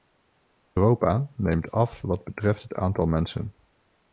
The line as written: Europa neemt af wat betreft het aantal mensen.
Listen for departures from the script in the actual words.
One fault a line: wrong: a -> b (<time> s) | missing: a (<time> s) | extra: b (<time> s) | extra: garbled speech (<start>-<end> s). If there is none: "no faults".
no faults